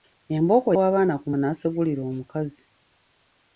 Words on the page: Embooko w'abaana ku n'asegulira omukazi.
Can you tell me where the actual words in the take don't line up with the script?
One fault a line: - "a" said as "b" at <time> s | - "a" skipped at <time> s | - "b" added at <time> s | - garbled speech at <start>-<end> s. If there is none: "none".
none